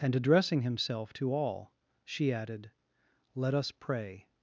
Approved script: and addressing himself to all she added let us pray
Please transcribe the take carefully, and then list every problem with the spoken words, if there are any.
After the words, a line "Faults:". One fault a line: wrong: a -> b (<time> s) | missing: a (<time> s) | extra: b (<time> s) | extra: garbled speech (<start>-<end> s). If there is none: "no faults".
and addressing himself to all she added let us pray
Faults:
no faults